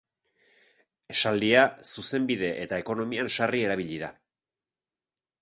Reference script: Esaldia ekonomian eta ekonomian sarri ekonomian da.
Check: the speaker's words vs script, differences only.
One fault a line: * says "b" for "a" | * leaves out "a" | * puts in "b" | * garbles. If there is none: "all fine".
* says "zuzenbide" for "ekonomian"
* says "erabili" for "ekonomian"